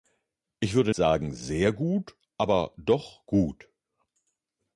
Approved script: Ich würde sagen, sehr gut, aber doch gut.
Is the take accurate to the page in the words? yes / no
yes